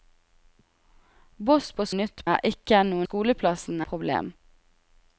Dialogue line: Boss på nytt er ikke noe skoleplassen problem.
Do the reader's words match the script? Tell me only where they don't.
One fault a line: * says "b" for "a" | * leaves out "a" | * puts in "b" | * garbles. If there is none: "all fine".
all fine